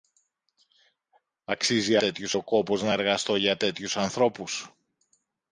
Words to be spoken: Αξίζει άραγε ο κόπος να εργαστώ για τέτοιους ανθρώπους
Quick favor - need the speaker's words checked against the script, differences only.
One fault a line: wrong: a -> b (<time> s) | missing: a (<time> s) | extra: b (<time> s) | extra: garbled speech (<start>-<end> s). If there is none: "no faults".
wrong: άραγε -> τέτοιους (2.0 s)